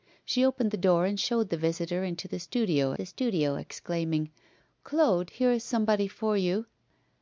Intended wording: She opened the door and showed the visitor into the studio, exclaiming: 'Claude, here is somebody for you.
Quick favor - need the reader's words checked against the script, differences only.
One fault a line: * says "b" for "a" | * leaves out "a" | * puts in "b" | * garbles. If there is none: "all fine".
* puts in "the studio"